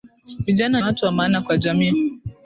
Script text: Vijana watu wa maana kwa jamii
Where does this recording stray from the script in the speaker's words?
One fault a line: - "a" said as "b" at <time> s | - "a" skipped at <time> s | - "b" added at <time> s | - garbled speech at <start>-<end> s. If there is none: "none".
none